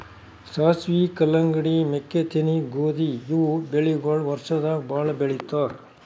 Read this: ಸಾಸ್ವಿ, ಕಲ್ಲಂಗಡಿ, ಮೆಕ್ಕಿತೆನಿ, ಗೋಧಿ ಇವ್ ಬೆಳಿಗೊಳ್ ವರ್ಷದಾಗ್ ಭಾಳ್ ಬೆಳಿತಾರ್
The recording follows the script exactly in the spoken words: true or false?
true